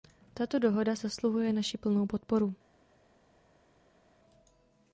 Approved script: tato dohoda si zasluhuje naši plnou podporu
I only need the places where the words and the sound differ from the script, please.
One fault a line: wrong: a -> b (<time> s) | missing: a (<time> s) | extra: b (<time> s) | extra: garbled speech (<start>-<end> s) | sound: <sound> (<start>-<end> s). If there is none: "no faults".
missing: si (0.9 s)